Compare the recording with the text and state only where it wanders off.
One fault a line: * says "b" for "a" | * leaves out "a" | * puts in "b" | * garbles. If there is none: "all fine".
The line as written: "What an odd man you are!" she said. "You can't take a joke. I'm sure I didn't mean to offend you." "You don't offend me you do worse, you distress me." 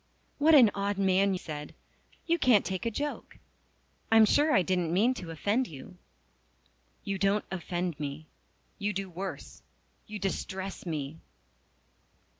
* leaves out "you are she"